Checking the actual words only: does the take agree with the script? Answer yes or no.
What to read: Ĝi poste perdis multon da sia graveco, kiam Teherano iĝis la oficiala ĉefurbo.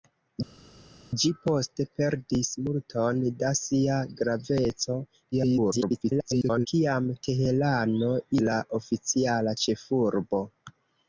no